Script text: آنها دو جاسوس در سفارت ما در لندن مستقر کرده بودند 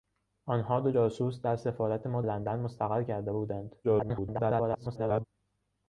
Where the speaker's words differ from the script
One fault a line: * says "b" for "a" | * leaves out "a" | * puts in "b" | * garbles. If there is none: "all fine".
* leaves out "در"
* garbles